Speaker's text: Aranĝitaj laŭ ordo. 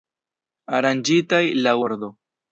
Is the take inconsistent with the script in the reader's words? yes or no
no